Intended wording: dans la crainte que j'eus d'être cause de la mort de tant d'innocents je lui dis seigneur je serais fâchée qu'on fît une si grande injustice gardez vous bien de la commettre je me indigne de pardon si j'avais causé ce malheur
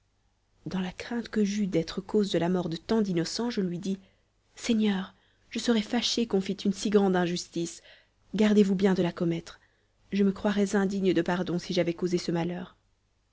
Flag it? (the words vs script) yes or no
yes